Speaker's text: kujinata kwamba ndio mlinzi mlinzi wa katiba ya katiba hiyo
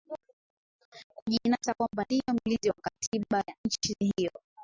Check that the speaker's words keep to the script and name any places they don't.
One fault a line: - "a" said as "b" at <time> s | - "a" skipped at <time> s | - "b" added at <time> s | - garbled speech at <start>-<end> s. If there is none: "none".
- "mlinzi" skipped at 2.7 s
- "katiba" said as "nchi" at 3.6 s